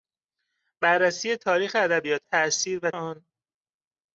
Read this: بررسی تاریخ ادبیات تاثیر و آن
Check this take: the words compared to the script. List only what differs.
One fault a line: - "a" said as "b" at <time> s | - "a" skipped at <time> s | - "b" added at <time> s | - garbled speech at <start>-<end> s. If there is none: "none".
none